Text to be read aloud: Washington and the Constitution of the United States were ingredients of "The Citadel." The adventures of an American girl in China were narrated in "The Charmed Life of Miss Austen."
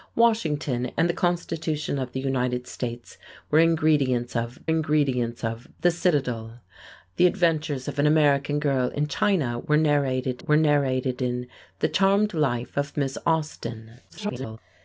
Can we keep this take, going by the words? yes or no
no